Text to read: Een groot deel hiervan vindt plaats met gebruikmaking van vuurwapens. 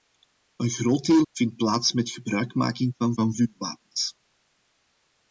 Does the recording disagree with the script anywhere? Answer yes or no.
yes